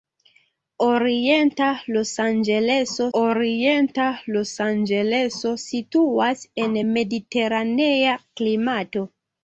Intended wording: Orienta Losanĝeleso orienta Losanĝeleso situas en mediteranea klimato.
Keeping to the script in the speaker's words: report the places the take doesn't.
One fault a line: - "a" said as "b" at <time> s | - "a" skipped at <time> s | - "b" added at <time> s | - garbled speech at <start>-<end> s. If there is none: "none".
none